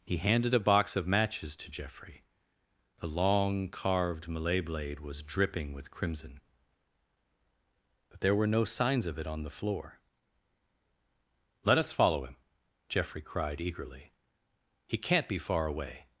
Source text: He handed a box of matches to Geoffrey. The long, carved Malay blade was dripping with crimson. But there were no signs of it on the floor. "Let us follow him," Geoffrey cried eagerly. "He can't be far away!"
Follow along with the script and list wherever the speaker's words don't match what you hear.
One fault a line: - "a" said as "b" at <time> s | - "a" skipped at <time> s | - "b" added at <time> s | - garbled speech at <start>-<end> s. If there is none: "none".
none